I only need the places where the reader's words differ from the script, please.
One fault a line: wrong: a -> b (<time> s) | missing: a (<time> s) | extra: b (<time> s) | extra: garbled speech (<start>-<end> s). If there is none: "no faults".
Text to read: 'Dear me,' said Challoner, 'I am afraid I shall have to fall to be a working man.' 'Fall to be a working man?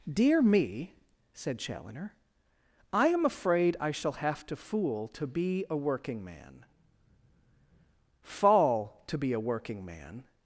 wrong: fall -> fool (4.5 s)